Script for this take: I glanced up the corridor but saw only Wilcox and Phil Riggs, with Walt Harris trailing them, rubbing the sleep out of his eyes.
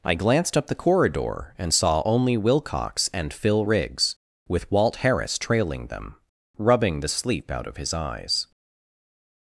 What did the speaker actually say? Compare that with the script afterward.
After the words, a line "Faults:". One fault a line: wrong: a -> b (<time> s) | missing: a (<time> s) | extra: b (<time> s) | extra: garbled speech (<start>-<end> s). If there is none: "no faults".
I glanced up the corridor and saw only Wilcox and Phil Riggs, with Walt Harris trailing them, rubbing the sleep out of his eyes.
Faults:
wrong: but -> and (1.6 s)